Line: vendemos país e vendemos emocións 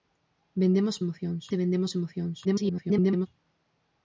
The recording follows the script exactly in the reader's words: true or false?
false